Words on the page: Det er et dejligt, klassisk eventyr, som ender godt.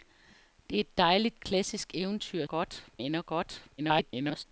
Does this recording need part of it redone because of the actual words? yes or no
yes